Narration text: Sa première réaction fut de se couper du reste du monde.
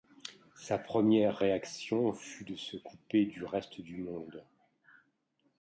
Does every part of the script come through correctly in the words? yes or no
yes